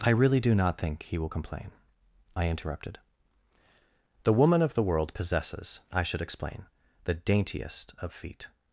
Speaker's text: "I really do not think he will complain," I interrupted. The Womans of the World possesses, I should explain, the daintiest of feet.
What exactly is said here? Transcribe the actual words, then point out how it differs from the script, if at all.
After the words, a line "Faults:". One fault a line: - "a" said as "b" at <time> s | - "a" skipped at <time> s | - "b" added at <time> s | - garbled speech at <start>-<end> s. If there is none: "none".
"I really do not think he will complain," I interrupted. The Woman of the World possesses, I should explain, the daintiest of feet.
Faults:
- "Womans" said as "Woman" at 4.3 s